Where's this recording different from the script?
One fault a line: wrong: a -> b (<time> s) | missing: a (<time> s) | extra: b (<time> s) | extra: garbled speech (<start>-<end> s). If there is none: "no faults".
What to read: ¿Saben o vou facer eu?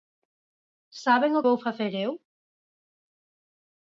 no faults